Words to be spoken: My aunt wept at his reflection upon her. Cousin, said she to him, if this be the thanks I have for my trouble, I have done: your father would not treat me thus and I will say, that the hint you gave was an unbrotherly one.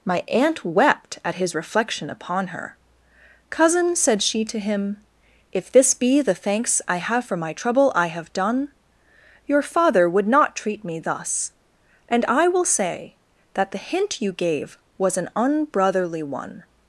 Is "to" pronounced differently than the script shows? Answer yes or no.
no